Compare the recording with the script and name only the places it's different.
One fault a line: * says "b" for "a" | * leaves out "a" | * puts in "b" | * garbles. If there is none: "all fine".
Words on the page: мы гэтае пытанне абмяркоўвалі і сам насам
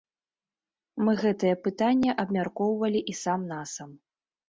all fine